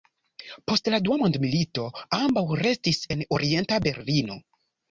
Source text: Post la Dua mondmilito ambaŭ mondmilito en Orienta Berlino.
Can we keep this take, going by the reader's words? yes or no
no